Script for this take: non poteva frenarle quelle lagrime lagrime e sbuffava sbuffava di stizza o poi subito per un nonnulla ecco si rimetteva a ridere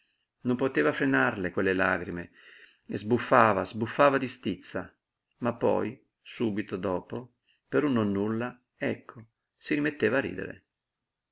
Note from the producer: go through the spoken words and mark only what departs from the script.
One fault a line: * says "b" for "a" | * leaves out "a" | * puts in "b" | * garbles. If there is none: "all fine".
* leaves out "lagrime"
* says "ma" for "o"
* puts in "dopo"